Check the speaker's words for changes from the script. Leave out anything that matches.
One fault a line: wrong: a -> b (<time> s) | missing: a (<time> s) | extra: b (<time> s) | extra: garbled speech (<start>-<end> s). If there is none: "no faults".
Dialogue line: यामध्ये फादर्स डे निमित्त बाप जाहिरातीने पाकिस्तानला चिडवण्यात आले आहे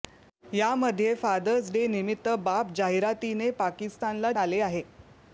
missing: चिडवण्यात (4.3 s)